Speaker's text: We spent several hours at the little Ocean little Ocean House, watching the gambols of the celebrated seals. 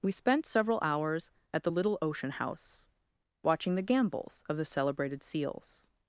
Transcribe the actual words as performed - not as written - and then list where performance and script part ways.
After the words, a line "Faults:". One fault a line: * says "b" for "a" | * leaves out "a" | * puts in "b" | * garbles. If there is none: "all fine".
We spent several hours at the little Ocean House, watching the gambols of the celebrated seals.
Faults:
* leaves out "little Ocean"